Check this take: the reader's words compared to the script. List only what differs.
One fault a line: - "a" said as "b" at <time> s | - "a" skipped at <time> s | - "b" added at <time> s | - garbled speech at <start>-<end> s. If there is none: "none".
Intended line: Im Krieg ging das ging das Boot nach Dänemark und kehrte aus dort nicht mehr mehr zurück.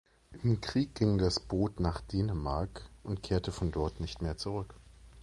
- "ging das" skipped at 1.4 s
- "aus" said as "von" at 3.5 s
- "mehr" skipped at 4.4 s